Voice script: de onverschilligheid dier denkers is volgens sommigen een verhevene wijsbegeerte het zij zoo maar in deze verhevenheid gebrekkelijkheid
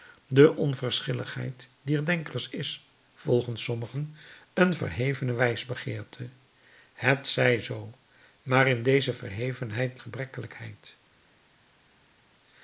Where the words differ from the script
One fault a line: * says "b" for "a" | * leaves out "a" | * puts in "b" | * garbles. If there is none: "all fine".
all fine